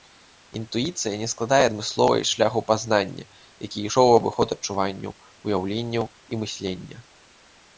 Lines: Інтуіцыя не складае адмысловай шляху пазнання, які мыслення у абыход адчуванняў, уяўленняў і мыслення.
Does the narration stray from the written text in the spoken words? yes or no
yes